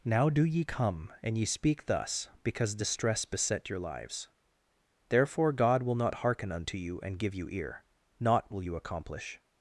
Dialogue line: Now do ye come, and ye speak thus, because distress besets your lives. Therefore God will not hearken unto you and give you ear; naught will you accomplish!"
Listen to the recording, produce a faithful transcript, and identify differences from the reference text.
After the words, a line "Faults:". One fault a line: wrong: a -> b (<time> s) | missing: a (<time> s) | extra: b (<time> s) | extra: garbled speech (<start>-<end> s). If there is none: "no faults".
Now do ye come, and ye speak thus, because distress beset your lives. Therefore God will not hearken unto you and give you ear; naught will you accomplish!"
Faults:
wrong: besets -> beset (3.2 s)